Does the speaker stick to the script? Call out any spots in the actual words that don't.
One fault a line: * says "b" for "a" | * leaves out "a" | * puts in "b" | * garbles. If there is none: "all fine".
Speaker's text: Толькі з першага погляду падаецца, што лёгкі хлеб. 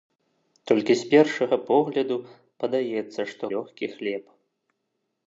all fine